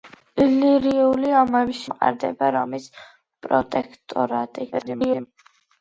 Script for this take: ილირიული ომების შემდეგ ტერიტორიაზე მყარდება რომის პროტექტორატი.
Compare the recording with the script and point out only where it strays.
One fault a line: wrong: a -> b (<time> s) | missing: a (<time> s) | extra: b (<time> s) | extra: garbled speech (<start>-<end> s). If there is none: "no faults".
missing: შემდეგ ტერიტორიაზე (1.8 s)
extra: garbled speech (4.7-5.3 s)